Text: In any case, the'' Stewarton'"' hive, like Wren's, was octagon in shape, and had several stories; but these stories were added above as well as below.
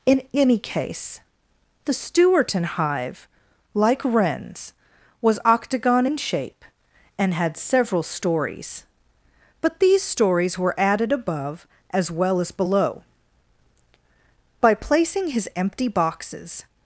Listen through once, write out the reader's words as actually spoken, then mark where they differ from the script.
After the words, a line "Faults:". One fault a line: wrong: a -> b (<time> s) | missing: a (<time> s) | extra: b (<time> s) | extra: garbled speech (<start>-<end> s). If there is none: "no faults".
In any case, the'' Stewarton'"' hive, like Wren's, was octagon in shape, and had several stories; but these stories were added above as well as below. By placing his empty boxes
Faults:
extra: By placing his empty boxes (14.6 s)